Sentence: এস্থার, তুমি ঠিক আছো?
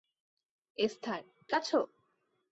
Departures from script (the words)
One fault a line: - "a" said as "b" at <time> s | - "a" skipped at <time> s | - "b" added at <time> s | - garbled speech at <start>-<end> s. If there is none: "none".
- "তুমি ঠিক" skipped at 1.2 s